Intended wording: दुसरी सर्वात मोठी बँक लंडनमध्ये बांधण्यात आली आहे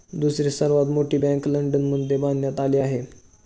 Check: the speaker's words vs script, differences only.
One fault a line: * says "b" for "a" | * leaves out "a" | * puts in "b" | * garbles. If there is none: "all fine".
all fine